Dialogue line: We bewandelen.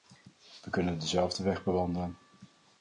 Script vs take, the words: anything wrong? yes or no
yes